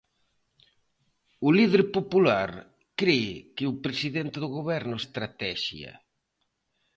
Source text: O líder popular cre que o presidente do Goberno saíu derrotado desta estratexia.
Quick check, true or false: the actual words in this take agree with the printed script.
false